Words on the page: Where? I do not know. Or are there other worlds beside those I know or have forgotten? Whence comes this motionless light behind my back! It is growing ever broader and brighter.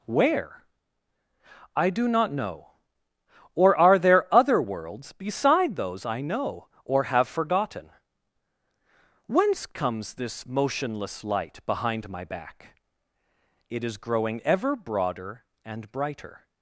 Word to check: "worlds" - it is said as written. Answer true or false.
true